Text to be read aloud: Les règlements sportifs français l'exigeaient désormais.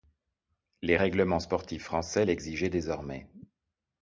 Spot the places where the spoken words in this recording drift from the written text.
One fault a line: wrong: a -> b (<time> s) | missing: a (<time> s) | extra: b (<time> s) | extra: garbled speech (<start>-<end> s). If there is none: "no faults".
no faults